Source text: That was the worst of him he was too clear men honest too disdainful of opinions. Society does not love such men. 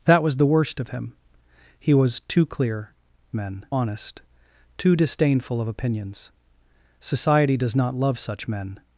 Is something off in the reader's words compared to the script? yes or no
no